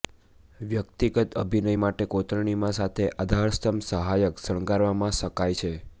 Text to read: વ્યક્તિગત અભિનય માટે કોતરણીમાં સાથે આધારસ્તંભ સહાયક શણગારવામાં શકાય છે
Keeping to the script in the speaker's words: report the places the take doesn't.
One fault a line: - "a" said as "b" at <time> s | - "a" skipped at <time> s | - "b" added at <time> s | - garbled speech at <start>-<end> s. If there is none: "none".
none